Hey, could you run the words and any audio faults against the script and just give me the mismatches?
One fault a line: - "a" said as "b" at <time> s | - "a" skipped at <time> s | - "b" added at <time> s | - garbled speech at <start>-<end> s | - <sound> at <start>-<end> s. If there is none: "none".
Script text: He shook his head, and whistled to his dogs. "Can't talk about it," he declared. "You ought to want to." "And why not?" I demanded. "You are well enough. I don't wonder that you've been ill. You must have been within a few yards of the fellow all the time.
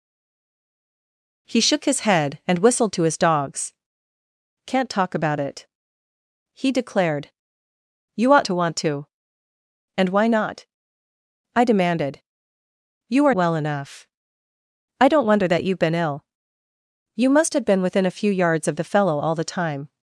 none